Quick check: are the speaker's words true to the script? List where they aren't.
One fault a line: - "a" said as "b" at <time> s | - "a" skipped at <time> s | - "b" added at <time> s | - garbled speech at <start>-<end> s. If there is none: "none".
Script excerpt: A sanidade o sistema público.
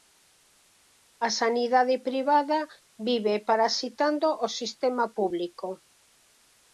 - "privada vive parasitando" added at 2.1 s